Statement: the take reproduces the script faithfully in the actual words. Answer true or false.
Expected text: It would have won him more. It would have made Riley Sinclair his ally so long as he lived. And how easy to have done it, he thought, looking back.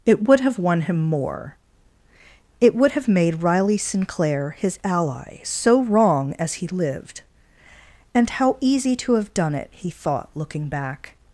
false